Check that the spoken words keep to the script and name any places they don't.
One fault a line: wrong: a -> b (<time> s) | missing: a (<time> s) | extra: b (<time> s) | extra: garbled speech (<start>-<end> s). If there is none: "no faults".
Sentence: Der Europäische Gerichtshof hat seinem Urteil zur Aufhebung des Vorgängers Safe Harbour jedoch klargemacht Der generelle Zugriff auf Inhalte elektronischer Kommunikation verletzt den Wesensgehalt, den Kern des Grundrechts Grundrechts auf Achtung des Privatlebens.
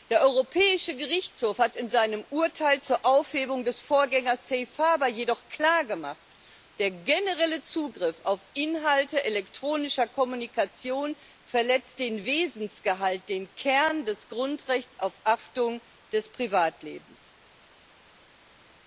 extra: in (1.8 s)
missing: Grundrechts (15.0 s)